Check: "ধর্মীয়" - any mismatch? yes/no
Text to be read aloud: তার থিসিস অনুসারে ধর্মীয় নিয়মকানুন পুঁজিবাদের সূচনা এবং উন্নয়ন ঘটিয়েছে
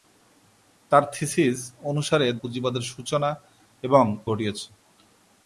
yes